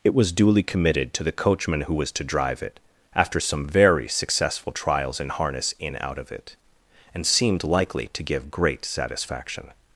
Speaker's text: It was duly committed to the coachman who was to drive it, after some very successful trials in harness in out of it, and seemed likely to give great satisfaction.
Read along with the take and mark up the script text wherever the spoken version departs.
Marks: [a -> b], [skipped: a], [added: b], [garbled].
It was duly committed to the coachman who was to drive it, after some very successful trials in harness in out of it, and seemed likely to give great satisfaction.